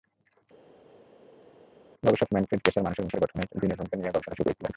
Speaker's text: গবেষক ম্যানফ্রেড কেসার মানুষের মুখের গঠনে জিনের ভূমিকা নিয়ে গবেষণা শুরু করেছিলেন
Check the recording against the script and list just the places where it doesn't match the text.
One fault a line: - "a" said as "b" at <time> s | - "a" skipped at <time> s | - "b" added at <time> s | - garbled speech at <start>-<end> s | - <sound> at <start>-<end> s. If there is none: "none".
none